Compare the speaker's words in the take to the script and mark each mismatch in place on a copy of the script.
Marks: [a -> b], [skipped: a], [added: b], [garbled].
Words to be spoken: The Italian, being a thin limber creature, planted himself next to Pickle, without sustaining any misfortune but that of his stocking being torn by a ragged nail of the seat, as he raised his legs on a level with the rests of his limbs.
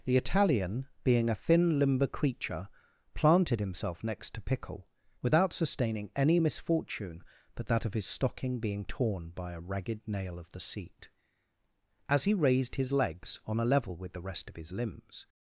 The Italian, being a thin limber creature, planted himself next to Pickle, without sustaining any misfortune but that of his stocking being torn by a ragged nail of the seat, as he raised his legs on a level with the [rests -> rest] of his limbs.